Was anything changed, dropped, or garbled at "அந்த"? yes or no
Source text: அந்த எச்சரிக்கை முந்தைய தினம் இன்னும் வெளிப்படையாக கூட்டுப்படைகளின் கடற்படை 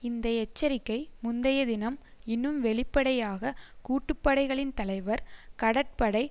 yes